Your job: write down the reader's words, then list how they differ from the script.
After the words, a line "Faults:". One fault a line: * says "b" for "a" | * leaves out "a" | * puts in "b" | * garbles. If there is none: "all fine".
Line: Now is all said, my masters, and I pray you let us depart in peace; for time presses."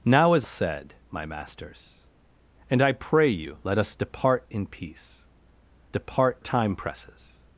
Now is said, my masters, and I pray you let us depart in peace; depart time presses."
Faults:
* leaves out "all"
* says "depart" for "for"